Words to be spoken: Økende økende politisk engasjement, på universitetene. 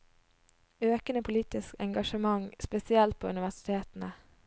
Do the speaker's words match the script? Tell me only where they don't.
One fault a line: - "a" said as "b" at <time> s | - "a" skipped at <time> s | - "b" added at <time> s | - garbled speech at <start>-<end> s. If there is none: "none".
- "økende" skipped at 1.2 s
- "spesielt" added at 2.6 s